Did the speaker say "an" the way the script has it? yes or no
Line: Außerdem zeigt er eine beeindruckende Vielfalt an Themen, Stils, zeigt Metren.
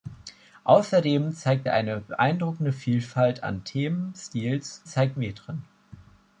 yes